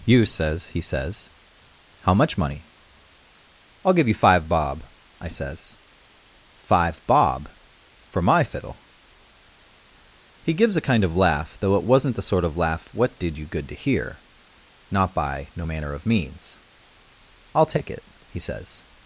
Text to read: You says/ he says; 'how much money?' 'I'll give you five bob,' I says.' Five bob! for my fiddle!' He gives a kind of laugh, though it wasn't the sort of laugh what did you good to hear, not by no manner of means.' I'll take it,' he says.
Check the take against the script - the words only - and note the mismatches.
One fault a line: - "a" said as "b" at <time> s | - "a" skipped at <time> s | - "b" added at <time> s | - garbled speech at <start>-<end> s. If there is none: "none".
none